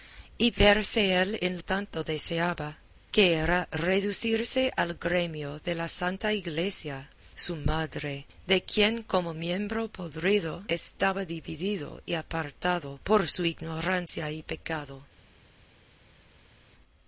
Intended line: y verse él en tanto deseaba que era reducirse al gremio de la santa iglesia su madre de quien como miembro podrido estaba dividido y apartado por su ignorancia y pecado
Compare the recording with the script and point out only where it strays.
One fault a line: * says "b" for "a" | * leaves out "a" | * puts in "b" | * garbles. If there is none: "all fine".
all fine